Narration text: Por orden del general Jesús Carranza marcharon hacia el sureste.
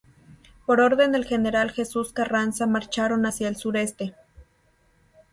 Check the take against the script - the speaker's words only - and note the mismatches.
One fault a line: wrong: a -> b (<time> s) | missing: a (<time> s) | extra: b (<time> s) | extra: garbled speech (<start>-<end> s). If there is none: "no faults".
no faults